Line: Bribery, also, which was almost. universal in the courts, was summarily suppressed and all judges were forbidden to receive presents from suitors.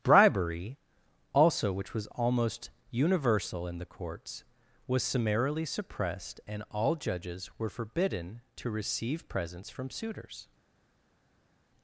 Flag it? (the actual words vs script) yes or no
no